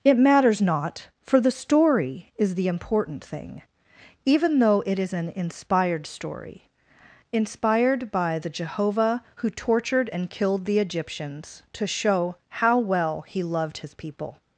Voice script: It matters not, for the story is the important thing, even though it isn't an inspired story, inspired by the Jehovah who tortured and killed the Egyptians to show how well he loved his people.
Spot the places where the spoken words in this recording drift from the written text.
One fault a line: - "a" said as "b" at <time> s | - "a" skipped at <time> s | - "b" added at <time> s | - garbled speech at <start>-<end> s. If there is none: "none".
- "isn't" said as "is" at 5.0 s